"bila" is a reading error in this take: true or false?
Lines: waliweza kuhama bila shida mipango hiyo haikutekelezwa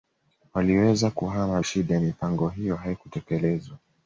true